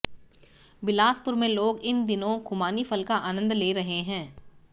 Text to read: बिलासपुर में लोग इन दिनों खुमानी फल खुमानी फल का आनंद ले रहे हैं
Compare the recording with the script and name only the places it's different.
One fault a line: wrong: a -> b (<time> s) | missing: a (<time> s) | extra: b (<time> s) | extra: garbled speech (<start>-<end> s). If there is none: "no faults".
missing: खुमानी फल (3.0 s)